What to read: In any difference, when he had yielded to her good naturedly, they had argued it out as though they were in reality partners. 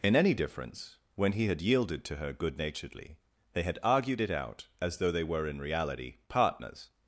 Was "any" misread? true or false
false